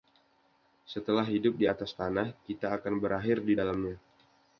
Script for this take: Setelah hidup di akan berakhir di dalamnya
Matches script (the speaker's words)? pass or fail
fail